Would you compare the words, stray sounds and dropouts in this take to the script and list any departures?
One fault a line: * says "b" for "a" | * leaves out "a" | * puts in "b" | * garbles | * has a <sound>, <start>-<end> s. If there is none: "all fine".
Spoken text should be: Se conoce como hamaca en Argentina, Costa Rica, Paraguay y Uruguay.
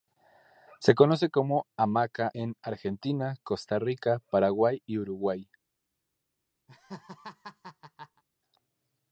* has a laugh, 6.7-8.2 s